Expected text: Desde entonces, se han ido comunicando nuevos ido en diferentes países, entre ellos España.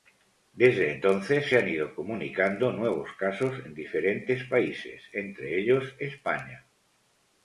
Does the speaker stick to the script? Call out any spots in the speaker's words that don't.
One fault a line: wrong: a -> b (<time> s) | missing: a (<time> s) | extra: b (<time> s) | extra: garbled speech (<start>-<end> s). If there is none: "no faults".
wrong: ido -> casos (3.1 s)